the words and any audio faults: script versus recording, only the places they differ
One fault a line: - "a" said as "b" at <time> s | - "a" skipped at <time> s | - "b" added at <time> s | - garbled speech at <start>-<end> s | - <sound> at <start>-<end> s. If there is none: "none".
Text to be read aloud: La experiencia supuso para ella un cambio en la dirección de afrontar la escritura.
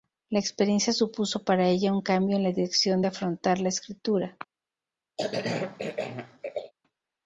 - cough at 5.2-6.7 s